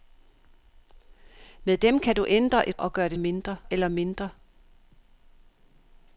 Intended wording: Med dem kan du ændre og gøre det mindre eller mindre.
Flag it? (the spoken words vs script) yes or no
no